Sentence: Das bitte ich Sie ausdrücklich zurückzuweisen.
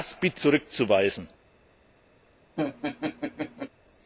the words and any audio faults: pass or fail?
fail